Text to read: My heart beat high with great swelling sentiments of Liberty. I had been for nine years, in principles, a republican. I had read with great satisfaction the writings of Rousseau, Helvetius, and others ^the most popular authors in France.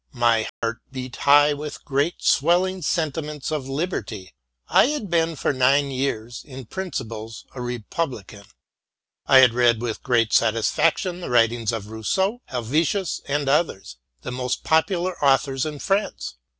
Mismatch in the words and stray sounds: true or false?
true